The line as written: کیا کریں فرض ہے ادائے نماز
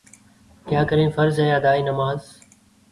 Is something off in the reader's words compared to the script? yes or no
no